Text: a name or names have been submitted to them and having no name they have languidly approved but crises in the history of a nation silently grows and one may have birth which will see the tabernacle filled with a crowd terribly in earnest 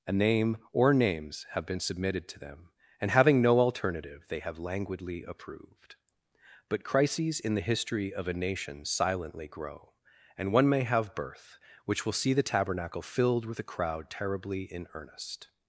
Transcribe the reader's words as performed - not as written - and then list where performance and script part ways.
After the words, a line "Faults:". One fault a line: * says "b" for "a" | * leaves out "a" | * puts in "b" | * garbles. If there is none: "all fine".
a name or names have been submitted to them and having no alternative they have languidly approved but crises in the history of a nation silently grow and one may have birth which will see the tabernacle filled with a crowd terribly in earnest
Faults:
* says "alternative" for "name"
* says "grow" for "grows"